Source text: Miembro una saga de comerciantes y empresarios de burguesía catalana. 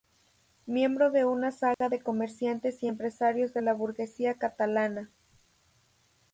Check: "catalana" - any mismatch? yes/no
no